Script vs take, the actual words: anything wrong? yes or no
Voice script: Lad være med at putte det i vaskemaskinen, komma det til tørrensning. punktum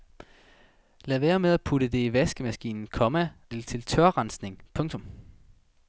no